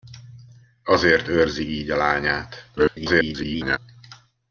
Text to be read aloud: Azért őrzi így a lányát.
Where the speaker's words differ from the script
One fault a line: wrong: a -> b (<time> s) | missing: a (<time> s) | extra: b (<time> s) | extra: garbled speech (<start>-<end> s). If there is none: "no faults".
extra: garbled speech (2.8-3.8 s)